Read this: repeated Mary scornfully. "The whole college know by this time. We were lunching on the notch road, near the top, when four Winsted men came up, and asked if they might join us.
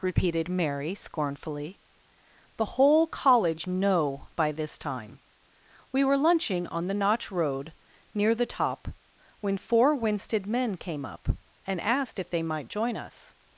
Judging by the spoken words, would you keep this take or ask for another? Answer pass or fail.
pass